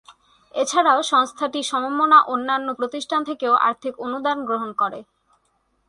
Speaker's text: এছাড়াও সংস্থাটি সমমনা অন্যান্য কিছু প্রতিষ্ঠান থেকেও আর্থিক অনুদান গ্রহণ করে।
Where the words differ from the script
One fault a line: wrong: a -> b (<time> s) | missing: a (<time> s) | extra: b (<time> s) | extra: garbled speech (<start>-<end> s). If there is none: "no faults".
missing: কিছু (2.7 s)